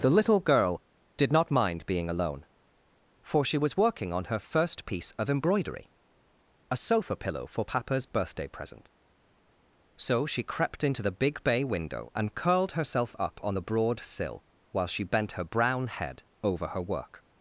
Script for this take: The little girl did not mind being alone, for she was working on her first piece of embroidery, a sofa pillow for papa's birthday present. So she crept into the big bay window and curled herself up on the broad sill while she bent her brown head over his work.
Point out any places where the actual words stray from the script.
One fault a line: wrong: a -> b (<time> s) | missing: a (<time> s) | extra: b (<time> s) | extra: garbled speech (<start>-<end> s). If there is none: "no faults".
wrong: his -> her (16.7 s)